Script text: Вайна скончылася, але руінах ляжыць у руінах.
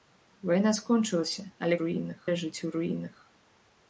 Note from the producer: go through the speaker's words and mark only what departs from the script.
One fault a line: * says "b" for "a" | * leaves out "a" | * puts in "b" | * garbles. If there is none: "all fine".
all fine